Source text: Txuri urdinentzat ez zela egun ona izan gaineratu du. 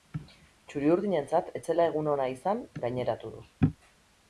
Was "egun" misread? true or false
false